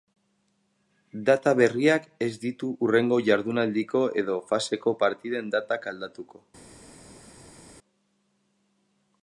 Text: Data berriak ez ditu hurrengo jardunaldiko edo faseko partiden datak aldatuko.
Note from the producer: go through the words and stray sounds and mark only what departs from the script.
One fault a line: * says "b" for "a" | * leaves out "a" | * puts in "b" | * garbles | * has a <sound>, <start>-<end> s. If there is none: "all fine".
all fine